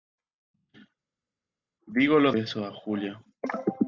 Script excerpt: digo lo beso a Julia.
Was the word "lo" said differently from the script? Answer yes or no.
no